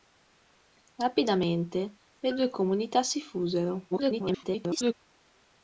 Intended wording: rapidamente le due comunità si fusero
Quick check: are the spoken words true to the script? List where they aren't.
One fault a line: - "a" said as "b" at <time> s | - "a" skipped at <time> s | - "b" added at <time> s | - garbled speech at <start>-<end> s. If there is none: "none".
- garbled speech at 3.9-4.9 s